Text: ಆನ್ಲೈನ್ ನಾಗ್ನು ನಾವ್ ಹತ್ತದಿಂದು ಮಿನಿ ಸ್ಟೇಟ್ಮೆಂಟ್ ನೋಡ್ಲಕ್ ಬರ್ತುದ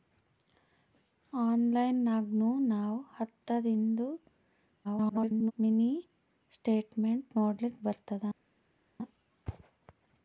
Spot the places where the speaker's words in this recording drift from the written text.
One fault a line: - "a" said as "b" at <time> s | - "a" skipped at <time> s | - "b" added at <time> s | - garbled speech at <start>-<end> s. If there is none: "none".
- garbled speech at 4.8-5.5 s